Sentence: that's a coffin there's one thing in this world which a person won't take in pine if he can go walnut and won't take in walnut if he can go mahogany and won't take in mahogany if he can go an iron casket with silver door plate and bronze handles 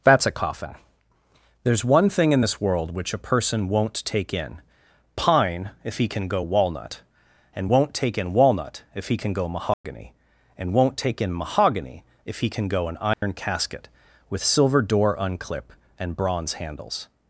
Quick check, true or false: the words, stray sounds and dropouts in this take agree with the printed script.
false